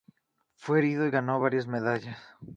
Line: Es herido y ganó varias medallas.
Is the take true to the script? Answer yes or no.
no